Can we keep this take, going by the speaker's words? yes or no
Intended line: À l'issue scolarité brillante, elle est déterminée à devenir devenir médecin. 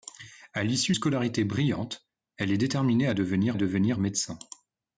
yes